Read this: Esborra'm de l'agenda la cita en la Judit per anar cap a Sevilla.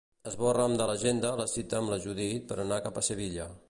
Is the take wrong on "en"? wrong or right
wrong